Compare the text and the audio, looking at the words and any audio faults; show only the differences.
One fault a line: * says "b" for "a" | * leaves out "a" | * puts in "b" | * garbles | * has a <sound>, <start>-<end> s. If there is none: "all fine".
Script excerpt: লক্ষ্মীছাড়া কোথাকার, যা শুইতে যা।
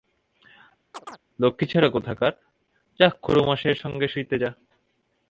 * has a chirp, 0.9-1.2 s
* puts in "খুড়োমশায়ের সঙ্গে"